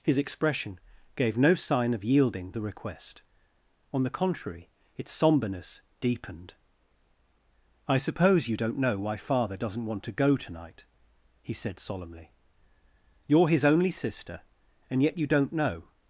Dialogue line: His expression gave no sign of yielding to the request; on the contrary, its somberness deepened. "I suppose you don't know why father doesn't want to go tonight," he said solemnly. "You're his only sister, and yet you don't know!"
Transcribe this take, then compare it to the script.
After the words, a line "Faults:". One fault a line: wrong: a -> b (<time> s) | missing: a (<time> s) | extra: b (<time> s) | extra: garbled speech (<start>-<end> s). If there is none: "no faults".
His expression gave no sign of yielding the request; on the contrary, its somberness deepened. "I suppose you don't know why father doesn't want to go tonight," he said solemnly. "You're his only sister, and yet you don't know!"
Faults:
missing: to (2.5 s)